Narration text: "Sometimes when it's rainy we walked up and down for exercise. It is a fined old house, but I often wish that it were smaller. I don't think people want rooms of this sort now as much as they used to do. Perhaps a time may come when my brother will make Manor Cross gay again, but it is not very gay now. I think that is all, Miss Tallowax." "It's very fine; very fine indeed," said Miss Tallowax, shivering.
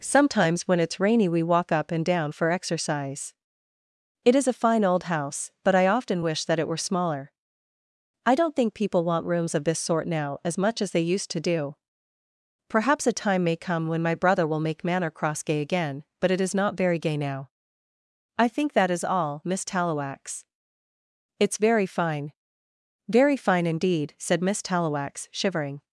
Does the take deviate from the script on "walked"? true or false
true